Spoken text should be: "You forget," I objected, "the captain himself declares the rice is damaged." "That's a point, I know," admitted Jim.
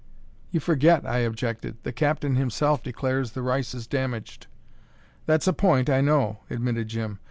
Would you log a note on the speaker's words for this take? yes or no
no